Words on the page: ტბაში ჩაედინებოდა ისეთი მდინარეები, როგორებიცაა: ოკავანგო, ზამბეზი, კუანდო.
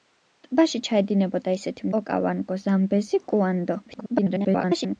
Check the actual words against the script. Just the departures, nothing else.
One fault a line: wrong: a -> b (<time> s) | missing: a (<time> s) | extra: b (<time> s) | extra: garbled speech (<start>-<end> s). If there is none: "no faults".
missing: მდინარეები როგორებიცაა (1.9 s)
extra: garbled speech (3.9-5.0 s)